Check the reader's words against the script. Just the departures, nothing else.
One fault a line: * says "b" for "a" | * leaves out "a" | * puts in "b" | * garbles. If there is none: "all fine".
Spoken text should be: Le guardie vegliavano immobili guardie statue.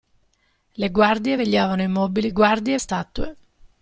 all fine